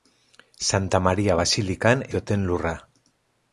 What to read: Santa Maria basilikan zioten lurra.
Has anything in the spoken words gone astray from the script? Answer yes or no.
no